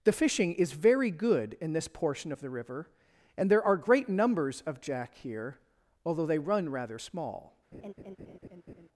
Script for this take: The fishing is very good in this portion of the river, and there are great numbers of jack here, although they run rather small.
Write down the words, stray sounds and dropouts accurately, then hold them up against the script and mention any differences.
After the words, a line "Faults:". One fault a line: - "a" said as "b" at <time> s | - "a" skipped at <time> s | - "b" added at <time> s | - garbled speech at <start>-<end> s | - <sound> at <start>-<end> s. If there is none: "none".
The fishing is very good in this portion of the river, and there are great numbers of jack here, although they run rather small.
Faults:
- laugh at 7.7-8.9 s